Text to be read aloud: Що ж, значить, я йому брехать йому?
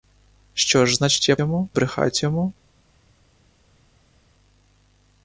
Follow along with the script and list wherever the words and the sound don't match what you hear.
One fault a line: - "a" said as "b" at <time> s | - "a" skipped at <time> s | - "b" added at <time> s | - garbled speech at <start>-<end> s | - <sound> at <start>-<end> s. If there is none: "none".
none